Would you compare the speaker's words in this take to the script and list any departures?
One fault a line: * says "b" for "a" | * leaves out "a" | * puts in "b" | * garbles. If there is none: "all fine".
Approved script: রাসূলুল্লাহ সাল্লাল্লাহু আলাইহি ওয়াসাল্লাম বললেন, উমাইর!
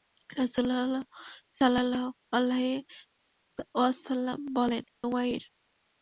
all fine